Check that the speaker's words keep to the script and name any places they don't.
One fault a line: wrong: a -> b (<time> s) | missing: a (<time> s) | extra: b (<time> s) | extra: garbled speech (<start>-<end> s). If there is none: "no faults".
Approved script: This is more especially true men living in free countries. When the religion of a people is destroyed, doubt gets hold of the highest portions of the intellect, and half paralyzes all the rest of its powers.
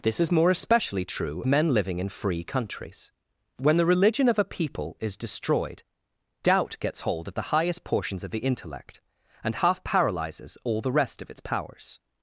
no faults